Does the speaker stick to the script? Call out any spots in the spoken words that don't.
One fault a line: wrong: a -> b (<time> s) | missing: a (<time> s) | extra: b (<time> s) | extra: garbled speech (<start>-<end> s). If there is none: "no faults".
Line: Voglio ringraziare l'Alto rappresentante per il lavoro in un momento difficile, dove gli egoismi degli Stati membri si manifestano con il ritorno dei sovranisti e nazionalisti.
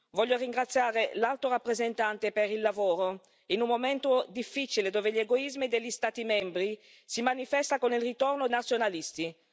missing: dei sovranisti e (8.5 s)